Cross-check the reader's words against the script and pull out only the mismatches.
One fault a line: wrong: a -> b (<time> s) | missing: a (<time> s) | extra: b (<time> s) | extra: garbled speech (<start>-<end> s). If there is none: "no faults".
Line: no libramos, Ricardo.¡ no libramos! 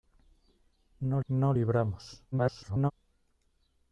missing: libramos Ricardo (1.2 s)
extra: garbled speech (2.3-2.9 s)